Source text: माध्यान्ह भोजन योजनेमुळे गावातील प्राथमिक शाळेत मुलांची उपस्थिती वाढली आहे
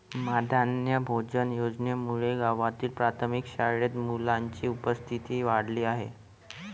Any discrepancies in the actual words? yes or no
no